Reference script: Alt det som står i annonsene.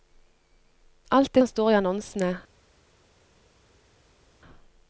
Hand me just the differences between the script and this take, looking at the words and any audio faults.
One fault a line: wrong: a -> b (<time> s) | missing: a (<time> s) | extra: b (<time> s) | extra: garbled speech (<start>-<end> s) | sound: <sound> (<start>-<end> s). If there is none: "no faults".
no faults